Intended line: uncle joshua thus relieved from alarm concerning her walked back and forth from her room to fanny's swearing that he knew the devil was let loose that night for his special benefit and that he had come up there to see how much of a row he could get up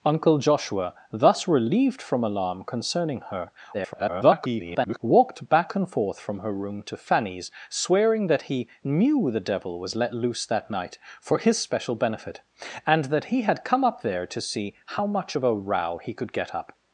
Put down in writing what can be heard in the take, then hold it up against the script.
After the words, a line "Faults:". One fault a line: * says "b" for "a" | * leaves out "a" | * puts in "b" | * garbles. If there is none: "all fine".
uncle joshua thus relieved from alarm concerning her [garbled] walked back and forth from her room to fanny's swearing that he knew the devil was let loose that night for his special benefit and that he had come up there to see how much of a row he could get up
Faults:
* garbles